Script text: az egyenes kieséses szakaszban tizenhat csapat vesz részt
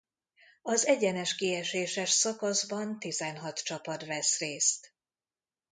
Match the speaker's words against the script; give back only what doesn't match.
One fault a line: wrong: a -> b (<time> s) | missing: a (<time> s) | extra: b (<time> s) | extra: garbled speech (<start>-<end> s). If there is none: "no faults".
no faults